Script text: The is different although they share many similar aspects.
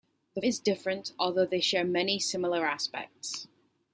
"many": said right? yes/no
yes